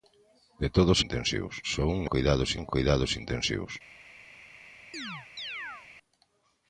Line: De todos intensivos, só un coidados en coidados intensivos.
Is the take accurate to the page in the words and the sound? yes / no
no